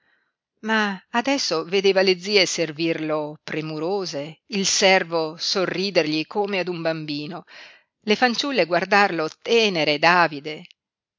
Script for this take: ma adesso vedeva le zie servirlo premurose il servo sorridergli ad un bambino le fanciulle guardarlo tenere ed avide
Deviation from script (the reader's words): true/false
true